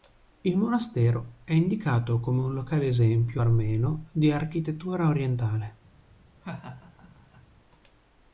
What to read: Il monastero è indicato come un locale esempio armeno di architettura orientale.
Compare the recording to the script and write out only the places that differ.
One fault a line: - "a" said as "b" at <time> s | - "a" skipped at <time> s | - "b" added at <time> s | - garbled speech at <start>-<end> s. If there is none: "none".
none